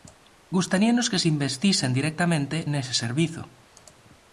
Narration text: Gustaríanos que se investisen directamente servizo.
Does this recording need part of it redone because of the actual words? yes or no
yes